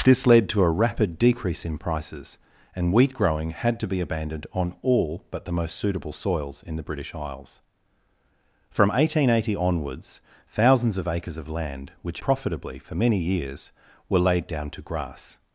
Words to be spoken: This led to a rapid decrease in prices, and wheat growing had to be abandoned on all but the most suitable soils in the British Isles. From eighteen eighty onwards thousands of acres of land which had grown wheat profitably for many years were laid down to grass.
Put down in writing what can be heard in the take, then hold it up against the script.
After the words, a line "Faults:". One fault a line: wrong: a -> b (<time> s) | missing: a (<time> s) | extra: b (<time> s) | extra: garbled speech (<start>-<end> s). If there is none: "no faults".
This led to a rapid decrease in prices, and wheat growing had to be abandoned on all but the most suitable soils in the British Isles. From eighteen eighty onwards thousands of acres of land which profitably for many years were laid down to grass.
Faults:
missing: had grown wheat (12.2 s)